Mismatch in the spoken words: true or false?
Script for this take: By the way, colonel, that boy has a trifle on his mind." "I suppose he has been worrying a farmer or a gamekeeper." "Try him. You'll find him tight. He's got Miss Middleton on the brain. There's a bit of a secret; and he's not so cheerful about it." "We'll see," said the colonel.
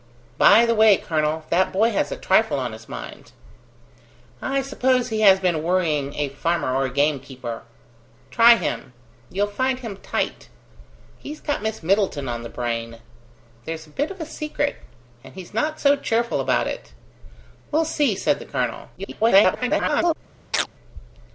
true